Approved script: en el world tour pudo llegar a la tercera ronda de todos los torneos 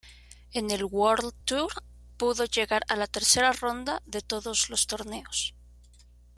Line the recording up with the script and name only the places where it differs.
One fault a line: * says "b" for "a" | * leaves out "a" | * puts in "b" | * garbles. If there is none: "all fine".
all fine